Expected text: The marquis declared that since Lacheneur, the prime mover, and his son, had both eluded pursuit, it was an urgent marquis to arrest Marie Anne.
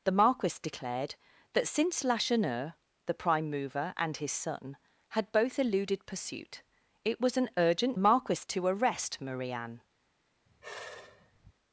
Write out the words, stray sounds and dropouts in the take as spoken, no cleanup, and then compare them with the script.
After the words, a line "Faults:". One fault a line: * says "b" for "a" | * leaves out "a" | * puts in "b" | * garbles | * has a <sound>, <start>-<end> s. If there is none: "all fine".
The marquis declared that since Lacheneur, the prime mover, and his son, had both eluded pursuit, it was an urgent marquis to arrest Marie Anne.
Faults:
* has a sigh, 10.5-11.5 s